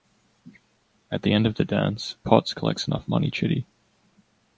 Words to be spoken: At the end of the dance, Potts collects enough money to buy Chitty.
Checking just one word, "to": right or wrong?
wrong